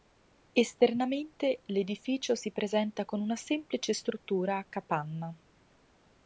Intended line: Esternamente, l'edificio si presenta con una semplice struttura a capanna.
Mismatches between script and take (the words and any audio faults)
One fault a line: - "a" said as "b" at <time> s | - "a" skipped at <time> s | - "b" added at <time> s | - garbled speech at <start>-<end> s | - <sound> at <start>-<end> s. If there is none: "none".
none